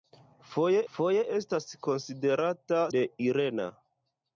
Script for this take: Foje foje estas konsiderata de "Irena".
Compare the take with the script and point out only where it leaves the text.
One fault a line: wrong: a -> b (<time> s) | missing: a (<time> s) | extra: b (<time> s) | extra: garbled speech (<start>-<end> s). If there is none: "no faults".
no faults